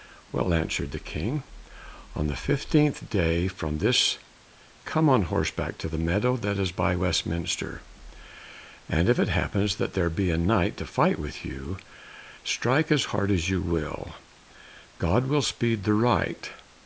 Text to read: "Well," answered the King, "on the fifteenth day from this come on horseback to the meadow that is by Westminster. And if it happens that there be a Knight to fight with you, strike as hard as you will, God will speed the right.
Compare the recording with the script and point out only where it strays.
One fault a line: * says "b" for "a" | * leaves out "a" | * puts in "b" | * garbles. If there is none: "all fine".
all fine